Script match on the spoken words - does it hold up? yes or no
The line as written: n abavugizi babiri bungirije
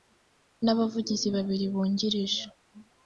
yes